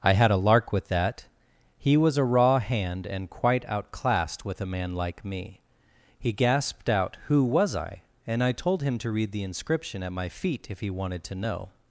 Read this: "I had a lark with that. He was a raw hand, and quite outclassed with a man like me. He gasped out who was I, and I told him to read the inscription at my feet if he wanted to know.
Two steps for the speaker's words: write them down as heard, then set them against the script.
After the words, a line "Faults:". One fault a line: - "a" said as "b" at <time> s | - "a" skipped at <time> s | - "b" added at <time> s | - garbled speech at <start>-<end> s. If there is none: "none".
"I had a lark with that. He was a raw hand, and quite outclassed with a man like me. He gasped out who was I, and I told him to read the inscription at my feet if he wanted to know.
Faults:
none